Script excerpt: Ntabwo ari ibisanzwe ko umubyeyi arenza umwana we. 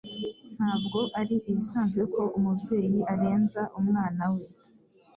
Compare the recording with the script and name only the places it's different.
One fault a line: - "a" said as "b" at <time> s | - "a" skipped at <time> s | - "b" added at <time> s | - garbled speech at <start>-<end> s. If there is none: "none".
none